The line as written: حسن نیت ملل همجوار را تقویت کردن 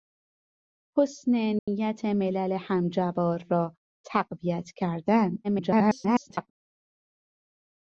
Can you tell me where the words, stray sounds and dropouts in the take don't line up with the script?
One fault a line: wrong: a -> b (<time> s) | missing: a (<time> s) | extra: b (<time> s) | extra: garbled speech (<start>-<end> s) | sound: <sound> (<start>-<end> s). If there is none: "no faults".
sound: dropout (1.6-1.7 s)
extra: garbled speech (5.4-6.5 s)